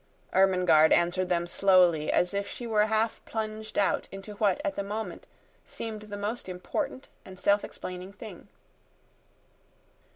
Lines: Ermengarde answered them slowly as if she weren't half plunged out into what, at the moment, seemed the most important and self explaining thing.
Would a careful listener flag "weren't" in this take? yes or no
yes